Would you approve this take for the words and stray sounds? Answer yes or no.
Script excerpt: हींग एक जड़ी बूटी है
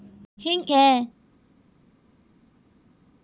no